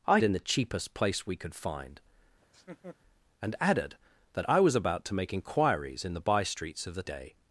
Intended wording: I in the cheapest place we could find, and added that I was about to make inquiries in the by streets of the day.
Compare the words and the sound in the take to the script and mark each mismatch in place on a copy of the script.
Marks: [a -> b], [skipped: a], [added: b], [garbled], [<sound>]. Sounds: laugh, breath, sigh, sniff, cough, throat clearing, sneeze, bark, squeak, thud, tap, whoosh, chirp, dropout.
I in the cheapest place we could find, [laugh] and added that I was about to make inquiries in the by streets of the day.